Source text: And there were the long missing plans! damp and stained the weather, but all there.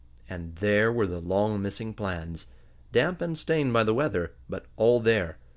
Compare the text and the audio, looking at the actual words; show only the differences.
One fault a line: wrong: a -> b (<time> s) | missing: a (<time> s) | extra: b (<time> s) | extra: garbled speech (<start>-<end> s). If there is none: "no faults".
extra: by (3.7 s)